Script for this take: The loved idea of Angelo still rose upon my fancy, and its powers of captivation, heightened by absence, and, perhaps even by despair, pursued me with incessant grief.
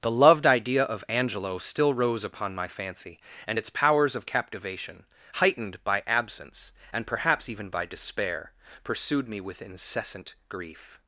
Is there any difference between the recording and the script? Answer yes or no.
no